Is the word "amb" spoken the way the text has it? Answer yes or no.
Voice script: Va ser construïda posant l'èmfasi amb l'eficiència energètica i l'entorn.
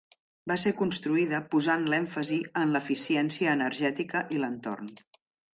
no